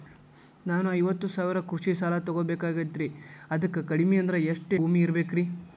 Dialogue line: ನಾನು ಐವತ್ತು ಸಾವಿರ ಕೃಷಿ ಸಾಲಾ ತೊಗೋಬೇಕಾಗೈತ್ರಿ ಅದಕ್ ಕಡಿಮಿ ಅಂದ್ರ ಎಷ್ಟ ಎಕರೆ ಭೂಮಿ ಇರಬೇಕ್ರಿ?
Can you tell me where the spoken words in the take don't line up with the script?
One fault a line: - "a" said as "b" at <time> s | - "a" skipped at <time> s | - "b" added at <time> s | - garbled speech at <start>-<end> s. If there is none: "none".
- "ಎಕರೆ" skipped at 4.7 s